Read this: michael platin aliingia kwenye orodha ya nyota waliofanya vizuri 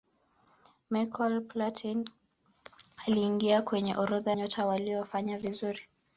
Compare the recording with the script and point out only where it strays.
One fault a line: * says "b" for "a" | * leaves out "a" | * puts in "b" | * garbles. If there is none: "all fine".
* leaves out "ya"